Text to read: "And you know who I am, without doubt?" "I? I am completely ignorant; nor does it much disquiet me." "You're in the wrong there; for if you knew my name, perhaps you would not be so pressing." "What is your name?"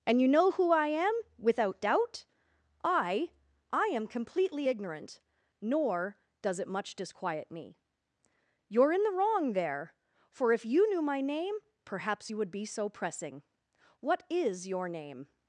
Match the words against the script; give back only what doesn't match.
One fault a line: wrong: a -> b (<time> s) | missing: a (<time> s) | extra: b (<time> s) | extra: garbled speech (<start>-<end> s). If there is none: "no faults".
missing: not (12.5 s)